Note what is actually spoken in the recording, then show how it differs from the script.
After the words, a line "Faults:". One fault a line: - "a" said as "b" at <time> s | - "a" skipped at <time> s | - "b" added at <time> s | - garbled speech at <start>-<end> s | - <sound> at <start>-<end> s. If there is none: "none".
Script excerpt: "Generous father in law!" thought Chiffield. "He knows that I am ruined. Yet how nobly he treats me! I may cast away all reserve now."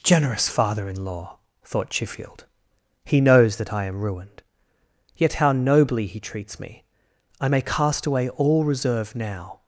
"Generous father in law!" thought Chiffield. "He knows that I am ruined. Yet how nobly he treats me! I may cast away all reserve now."
Faults:
none